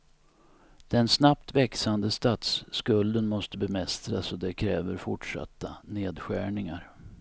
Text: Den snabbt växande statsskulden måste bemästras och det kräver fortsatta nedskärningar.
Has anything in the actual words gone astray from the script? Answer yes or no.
no